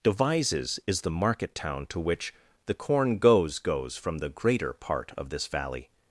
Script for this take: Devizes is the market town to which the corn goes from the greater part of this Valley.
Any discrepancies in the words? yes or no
yes